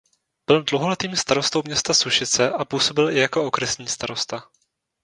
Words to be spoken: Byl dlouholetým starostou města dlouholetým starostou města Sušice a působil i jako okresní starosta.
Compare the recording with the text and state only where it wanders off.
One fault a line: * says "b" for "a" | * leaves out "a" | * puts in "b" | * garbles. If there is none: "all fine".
* leaves out "dlouholetým starostou města"